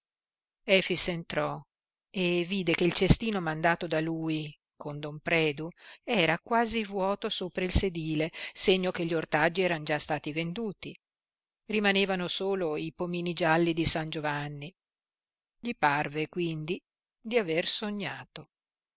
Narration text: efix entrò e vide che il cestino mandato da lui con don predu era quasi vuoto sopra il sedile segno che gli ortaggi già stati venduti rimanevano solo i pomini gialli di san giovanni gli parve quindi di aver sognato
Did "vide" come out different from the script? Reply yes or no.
no